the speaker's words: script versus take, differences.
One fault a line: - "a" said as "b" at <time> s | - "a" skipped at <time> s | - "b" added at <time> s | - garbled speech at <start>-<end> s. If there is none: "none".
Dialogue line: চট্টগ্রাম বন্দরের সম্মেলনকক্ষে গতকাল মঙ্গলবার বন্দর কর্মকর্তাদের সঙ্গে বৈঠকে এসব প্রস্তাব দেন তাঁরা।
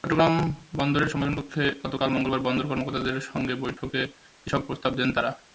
none